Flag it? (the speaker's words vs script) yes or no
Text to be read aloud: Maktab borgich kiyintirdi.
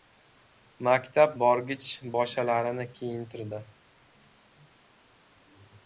yes